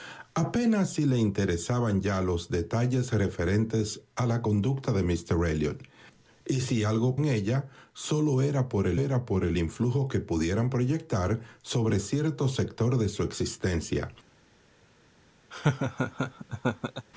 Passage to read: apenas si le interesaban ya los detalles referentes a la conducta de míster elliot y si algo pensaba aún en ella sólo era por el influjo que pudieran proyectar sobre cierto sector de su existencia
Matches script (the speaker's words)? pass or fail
fail